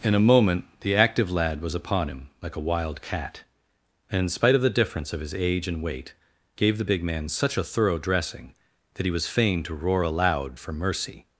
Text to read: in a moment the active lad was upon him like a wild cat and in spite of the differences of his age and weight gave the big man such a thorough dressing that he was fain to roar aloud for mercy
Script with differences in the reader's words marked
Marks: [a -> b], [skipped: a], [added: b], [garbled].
in a moment the active lad was upon him like a wild cat and in spite of the [differences -> difference] of his age and weight gave the big man such a thorough dressing that he was fain to roar aloud for mercy